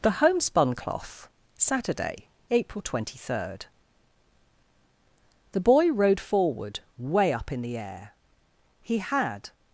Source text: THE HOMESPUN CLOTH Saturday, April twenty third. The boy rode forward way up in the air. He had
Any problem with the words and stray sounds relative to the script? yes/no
no